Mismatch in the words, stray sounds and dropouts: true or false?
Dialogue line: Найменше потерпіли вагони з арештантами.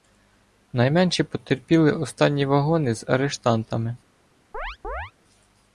true